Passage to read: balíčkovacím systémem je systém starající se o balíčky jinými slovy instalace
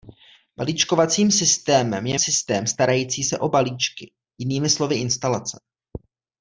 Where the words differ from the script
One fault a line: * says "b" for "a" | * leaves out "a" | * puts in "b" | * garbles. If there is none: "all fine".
all fine